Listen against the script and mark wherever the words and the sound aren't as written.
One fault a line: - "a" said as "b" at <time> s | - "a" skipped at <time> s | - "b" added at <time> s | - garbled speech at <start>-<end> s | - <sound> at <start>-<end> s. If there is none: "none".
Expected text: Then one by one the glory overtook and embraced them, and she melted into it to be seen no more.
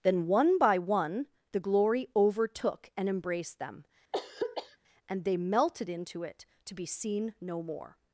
- throat clearing at 4.1-4.8 s
- "she" said as "they" at 5.2 s